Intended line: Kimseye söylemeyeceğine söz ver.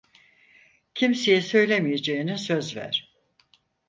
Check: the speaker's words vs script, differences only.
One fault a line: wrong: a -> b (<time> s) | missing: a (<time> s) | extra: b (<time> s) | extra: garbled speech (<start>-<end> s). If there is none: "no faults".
no faults